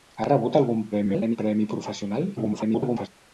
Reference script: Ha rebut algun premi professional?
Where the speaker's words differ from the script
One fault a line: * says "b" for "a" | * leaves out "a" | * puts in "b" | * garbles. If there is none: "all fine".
* garbles
* garbles